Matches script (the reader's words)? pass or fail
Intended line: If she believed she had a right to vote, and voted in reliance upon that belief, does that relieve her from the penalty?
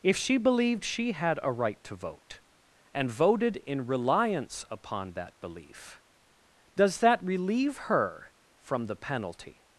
pass